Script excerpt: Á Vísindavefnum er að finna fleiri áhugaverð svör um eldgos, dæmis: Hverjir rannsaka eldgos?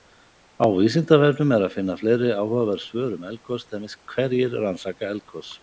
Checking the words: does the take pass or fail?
pass